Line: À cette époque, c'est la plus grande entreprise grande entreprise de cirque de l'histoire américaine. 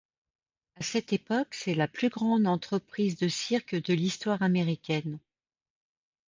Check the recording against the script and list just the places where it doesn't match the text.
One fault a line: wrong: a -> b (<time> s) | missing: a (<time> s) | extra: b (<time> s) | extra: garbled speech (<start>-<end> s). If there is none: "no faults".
missing: grande entreprise (3.2 s)